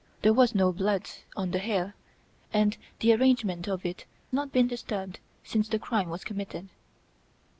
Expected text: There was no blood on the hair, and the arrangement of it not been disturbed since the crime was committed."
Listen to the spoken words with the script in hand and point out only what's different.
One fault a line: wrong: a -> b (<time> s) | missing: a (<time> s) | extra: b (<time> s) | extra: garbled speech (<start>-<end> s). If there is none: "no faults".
no faults